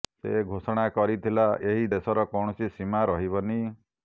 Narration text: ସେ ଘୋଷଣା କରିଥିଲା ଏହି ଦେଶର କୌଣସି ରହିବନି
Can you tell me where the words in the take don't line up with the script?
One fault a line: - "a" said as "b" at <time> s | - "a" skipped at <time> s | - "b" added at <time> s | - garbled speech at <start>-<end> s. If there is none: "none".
- "ସୀମା" added at 2.7 s